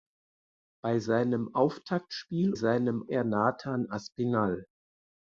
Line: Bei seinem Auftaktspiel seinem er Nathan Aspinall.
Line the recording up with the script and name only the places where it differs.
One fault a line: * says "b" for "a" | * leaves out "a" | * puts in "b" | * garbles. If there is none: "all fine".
all fine